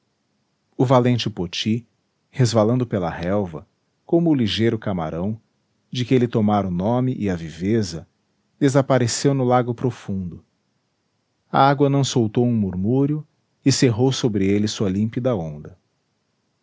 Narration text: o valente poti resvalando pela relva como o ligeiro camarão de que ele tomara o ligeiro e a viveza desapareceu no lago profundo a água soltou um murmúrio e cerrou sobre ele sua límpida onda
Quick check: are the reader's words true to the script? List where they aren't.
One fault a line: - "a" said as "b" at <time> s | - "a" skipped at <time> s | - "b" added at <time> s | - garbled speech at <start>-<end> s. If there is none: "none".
- "ligeiro" said as "nome" at 6.7 s
- "não" added at 11.9 s